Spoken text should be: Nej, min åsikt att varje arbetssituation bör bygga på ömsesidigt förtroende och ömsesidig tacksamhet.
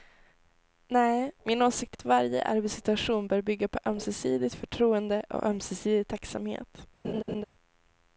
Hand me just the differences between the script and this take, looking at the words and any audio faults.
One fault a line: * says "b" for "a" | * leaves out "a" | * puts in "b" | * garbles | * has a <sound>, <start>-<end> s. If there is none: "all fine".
* has a laugh, 7.0-7.4 s